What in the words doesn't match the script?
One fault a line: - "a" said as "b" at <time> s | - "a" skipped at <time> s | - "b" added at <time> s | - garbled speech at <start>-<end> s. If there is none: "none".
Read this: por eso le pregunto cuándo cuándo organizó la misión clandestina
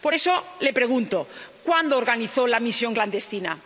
- "cuándo" skipped at 2.0 s